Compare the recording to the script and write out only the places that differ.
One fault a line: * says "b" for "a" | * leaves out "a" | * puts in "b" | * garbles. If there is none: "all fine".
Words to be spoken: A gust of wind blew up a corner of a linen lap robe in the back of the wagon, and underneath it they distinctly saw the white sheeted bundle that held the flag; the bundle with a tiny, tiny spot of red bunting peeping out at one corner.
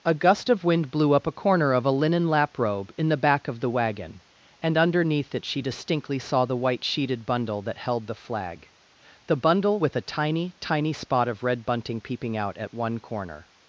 * says "she" for "they"